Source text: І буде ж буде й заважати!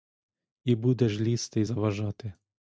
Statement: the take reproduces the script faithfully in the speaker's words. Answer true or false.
false